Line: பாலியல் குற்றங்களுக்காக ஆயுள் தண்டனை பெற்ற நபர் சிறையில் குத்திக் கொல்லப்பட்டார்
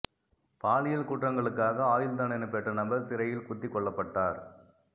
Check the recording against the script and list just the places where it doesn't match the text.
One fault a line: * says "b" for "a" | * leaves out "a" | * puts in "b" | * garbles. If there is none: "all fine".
all fine